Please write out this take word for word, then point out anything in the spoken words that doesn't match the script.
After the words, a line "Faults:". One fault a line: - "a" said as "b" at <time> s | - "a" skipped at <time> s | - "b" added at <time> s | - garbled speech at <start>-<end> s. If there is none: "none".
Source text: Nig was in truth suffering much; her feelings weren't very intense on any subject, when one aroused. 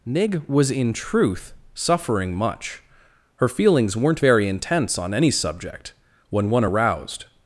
Nig was in truth suffering much; her feelings weren't very intense on any subject, when one aroused.
Faults:
none